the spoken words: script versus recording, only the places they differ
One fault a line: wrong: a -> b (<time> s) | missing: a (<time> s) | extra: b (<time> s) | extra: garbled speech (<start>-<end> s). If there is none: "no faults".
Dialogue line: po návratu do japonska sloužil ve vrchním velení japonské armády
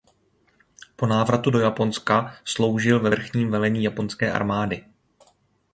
no faults